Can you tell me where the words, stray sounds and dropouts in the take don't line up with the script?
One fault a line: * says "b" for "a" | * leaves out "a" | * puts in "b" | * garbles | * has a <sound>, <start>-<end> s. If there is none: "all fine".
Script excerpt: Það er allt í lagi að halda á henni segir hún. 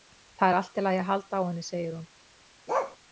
* has a bark, 2.7-3.0 s